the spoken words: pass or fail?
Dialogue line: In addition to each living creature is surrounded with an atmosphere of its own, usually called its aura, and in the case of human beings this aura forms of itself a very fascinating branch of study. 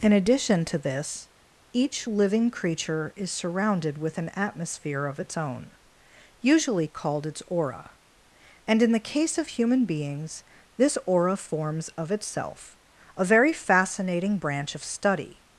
fail